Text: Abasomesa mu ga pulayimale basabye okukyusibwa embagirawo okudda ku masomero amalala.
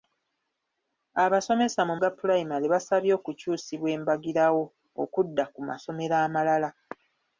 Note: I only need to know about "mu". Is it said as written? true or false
true